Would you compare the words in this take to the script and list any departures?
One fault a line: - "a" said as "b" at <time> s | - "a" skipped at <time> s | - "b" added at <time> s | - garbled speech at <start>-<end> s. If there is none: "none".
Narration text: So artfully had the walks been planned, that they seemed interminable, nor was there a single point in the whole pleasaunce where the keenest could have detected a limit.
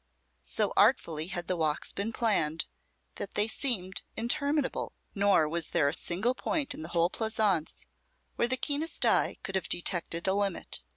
- "eye" added at 9.0 s